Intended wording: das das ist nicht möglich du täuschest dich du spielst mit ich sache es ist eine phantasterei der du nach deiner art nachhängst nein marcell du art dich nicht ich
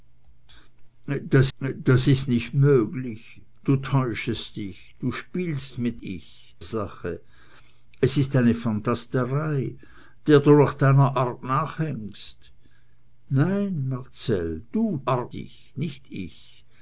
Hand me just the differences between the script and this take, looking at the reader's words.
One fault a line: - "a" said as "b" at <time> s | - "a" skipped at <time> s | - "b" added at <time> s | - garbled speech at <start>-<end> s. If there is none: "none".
none